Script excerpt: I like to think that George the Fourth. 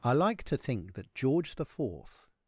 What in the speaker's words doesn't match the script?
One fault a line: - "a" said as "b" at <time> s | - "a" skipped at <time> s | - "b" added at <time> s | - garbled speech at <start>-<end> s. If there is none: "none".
none